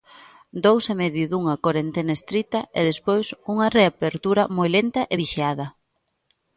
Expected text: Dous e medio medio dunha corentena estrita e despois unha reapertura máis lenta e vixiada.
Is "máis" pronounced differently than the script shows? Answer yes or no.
yes